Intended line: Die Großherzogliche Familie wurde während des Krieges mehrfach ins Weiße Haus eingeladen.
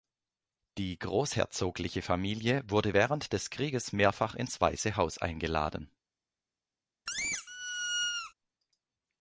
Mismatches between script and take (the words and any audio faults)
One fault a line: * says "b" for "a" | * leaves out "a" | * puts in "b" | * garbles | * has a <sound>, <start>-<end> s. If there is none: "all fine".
* has a squeak, 7.1-8.3 s